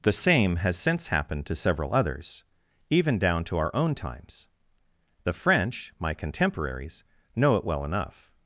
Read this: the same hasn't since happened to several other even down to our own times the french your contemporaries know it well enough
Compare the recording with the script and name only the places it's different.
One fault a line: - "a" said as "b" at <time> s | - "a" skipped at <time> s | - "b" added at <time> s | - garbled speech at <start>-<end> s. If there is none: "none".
- "hasn't" said as "has" at 0.6 s
- "other" said as "others" at 1.9 s
- "your" said as "my" at 6.0 s